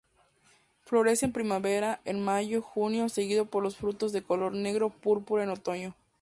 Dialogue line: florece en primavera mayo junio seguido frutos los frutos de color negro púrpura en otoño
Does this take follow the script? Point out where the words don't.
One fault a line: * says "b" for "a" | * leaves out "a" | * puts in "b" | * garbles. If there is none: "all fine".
* puts in "en"
* says "por" for "frutos"